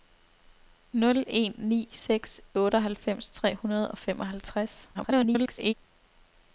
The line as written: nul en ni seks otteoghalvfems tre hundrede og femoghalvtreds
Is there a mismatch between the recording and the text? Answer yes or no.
yes